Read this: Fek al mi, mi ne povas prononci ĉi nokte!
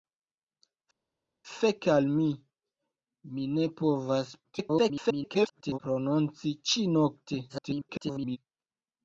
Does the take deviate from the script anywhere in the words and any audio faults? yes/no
yes